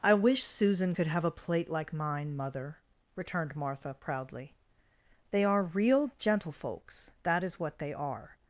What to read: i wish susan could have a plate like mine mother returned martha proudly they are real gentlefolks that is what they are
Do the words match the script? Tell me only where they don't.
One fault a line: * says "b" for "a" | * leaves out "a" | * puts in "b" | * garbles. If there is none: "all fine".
all fine